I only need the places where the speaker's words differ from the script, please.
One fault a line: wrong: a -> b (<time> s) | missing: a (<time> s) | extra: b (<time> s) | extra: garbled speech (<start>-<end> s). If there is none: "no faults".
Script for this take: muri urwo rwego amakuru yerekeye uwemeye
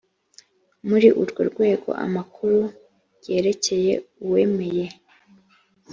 no faults